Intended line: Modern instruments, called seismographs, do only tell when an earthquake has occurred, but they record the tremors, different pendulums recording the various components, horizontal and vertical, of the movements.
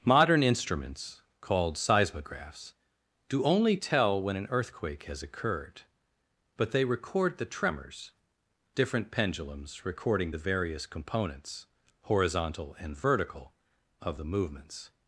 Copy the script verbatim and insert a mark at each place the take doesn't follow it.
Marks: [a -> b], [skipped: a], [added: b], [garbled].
Modern instruments, called seismographs, do only tell when an earthquake has occurred, but they record the tremors, different pendulums recording the various components, horizontal and vertical, of the movements.